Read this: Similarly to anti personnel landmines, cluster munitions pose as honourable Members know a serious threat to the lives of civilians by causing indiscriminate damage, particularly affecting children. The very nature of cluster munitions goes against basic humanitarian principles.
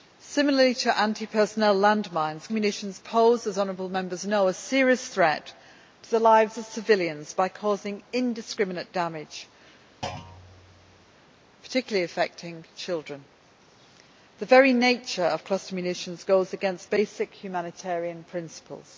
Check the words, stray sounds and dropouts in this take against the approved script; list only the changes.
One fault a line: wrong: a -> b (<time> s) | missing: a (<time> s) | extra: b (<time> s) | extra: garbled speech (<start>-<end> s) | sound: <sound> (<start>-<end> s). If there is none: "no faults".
missing: cluster (2.5 s)
sound: thud (10.0-11.1 s)